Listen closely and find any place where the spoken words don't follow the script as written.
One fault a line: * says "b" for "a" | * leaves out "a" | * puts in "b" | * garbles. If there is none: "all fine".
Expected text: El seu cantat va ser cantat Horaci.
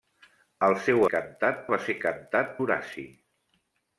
all fine